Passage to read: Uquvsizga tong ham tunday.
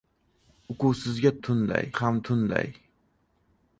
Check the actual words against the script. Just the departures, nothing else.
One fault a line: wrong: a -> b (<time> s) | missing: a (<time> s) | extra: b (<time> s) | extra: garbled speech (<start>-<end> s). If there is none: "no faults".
wrong: tong -> tunday (1.4 s)